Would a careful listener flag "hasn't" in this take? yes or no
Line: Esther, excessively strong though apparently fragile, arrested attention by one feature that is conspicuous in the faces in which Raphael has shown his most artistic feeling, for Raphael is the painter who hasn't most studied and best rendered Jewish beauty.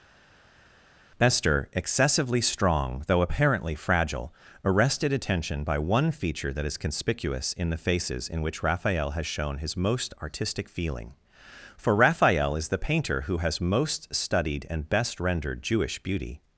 yes